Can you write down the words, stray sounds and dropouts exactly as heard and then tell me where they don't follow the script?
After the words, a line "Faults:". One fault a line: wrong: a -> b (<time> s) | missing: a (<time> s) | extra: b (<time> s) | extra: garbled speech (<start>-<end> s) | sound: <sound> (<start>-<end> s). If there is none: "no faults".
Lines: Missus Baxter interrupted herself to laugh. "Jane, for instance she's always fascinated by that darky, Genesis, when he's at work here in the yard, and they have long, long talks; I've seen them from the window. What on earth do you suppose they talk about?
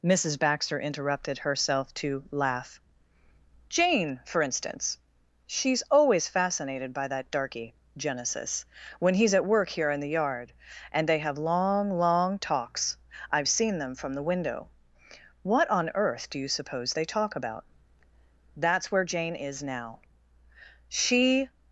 Missus Baxter interrupted herself to laugh. "Jane, for instance she's always fascinated by that darky, Genesis, when he's at work here in the yard, and they have long, long talks; I've seen them from the window. What on earth do you suppose they talk about? That's where Jane is now. She
Faults:
extra: That's where Jane is now She (18.6 s)